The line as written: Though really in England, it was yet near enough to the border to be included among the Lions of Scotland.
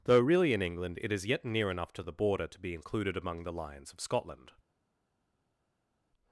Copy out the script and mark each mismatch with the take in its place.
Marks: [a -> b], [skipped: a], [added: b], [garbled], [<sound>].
Though really in England, it [was -> is] yet near enough to the border to be included among the Lions of Scotland.